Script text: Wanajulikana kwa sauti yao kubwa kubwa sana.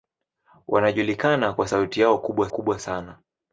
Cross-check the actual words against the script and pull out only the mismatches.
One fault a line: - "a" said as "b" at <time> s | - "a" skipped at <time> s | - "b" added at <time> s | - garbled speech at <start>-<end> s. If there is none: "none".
none